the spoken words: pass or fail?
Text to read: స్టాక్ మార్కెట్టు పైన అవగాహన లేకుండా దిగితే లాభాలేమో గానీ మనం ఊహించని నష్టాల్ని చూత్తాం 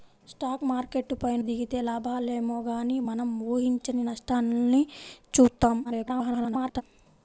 fail